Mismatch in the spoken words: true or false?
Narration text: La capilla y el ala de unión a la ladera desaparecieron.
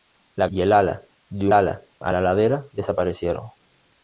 true